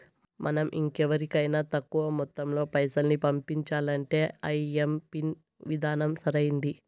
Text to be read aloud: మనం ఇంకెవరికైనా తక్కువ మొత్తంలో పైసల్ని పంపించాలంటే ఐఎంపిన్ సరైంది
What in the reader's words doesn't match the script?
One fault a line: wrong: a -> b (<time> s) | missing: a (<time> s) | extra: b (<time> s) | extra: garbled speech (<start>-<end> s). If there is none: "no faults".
extra: విధానం (5.7 s)